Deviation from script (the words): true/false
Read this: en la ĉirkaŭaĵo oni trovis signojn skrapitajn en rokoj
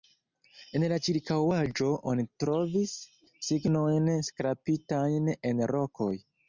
false